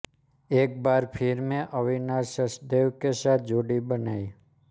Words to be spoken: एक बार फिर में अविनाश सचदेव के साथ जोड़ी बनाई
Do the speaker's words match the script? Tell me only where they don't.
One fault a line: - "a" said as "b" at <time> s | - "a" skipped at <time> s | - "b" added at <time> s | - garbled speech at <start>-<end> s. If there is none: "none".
none